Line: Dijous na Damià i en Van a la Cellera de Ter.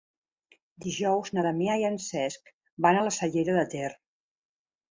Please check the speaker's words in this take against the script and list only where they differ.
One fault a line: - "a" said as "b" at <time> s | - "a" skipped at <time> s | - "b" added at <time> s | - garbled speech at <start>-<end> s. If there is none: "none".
- "Cesc" added at 2.1 s